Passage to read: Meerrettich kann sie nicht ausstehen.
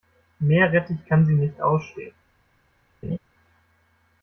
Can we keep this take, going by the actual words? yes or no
yes